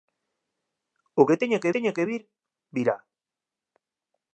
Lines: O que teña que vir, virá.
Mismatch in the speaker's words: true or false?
true